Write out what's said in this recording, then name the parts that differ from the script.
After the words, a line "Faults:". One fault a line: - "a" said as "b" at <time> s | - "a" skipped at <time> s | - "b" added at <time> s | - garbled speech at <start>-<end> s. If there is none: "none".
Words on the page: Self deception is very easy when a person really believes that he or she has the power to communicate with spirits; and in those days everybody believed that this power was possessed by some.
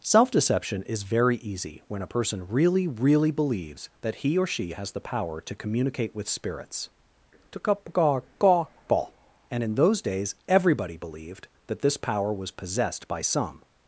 Self deception is very easy when a person really really believes that he or she has the power to communicate with spirits; and in those days everybody believed that this power was possessed by some.
Faults:
- "really" added at 2.9 s